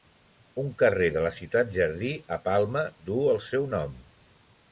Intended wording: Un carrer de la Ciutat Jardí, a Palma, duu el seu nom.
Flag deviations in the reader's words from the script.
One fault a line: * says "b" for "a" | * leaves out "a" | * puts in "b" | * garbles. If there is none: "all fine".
all fine